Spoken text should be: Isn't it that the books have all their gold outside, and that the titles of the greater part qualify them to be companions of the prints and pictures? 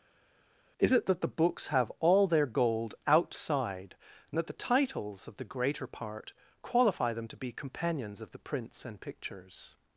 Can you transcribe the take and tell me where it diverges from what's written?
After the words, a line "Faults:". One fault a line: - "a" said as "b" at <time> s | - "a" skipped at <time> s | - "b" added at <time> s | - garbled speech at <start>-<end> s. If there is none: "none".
Is it that the books have all their gold outside, and that the titles of the greater part qualify them to be companions of the prints and pictures?
Faults:
- "Isn't" said as "Is" at 0.8 s